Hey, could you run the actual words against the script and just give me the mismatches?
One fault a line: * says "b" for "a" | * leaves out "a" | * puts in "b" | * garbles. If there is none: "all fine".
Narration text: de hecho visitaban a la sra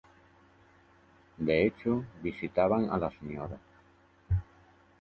all fine